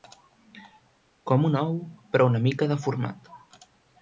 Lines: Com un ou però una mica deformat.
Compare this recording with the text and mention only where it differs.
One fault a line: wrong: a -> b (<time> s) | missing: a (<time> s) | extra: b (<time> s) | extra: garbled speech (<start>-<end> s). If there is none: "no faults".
no faults